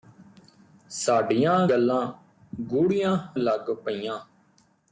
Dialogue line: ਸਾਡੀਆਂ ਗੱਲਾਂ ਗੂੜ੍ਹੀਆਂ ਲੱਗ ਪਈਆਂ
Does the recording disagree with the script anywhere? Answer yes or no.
no